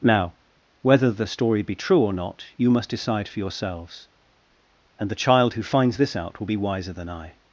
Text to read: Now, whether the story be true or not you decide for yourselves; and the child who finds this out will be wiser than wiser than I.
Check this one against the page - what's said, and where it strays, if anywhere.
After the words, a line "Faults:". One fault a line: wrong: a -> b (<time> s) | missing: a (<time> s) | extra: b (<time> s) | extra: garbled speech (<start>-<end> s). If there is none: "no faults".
Now, whether the story be true or not you must decide for yourselves; and the child who finds this out will be wiser than I.
Faults:
extra: must (2.7 s)
missing: wiser than (7.1 s)